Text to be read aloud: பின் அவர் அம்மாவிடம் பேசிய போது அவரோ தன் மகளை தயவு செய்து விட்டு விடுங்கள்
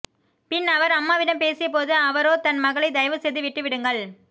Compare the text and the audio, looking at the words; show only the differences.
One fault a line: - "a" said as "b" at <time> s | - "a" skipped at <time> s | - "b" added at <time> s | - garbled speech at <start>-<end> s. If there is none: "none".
none